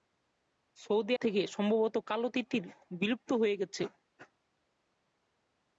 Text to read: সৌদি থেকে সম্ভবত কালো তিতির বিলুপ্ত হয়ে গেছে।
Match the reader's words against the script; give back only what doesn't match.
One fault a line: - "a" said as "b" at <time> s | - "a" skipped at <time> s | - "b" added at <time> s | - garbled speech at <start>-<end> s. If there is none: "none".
none